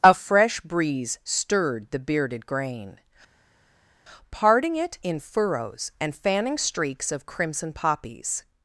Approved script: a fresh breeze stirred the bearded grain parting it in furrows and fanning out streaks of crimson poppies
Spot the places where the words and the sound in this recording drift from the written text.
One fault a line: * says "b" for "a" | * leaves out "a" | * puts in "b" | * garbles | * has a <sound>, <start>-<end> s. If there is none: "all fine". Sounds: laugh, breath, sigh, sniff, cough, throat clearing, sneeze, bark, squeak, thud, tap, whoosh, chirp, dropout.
* leaves out "out"